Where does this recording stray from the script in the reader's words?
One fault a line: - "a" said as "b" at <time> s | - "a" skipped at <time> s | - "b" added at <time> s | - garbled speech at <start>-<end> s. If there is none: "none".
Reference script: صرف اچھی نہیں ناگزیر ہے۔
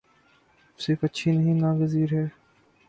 none